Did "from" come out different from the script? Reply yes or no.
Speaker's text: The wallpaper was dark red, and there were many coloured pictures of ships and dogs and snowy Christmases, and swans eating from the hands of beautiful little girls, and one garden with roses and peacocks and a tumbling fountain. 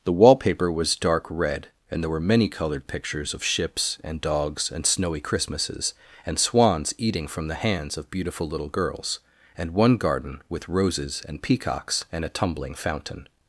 no